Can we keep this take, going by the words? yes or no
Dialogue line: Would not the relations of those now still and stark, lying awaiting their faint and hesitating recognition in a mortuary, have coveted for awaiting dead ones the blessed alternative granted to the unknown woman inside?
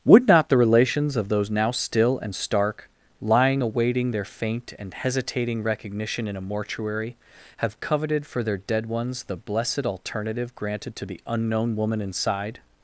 no